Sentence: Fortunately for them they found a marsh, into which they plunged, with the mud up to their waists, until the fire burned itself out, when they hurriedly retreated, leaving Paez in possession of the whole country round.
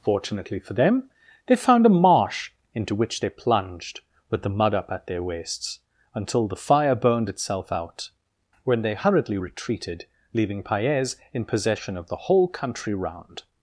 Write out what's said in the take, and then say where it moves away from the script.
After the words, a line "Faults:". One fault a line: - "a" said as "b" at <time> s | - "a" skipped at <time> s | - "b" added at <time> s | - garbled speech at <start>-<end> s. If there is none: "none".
Fortunately for them they found a marsh, into which they plunged, with the mud up at their waists, until the fire burned itself out, when they hurriedly retreated, leaving Paez in possession of the whole country round.
Faults:
- "to" said as "at" at 4.9 s